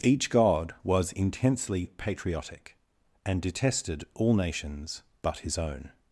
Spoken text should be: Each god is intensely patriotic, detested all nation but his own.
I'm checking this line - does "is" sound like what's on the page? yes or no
no